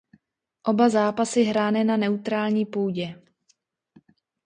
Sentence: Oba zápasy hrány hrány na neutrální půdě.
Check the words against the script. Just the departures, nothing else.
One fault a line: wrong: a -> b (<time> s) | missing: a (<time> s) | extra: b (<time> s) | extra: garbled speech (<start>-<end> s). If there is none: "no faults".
missing: hrány (1.8 s)